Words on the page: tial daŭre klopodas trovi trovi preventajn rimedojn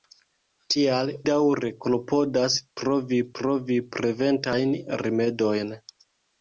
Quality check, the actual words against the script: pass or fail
pass